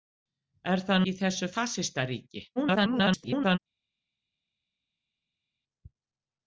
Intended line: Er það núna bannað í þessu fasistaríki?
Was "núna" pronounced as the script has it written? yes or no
no